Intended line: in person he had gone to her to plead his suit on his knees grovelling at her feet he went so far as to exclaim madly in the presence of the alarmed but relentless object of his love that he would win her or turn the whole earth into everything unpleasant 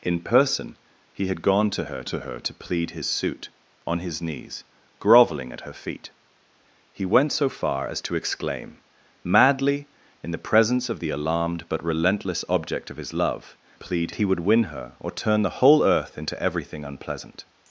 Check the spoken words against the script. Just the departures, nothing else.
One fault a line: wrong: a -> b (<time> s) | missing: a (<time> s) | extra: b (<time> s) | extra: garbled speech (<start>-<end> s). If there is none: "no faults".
extra: her to (2.2 s)
wrong: that -> plead (13.7 s)